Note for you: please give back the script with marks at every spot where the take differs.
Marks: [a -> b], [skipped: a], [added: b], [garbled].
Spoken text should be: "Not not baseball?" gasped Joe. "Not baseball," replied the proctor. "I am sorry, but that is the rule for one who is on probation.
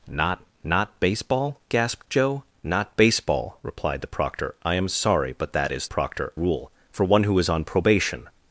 "Not not baseball?" gasped Joe. "Not baseball," replied the proctor. "I am sorry, but that is [the -> proctor] rule for one who is on probation.